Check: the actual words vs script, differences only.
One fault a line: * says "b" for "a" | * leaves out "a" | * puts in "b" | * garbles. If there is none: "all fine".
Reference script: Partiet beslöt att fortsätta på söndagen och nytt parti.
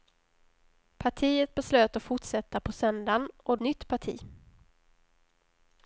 all fine